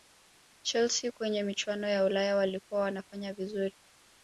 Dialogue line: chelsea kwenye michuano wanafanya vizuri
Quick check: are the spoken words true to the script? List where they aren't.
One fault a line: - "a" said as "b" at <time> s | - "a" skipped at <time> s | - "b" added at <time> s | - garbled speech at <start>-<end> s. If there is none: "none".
- "ya ulaya walikuwa" added at 1.9 s